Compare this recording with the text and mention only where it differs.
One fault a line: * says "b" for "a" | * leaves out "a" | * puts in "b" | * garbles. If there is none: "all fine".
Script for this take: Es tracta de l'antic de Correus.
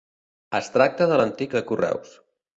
all fine